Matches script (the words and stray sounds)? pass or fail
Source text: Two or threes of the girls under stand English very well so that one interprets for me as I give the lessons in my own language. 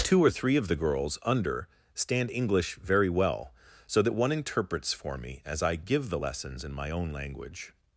fail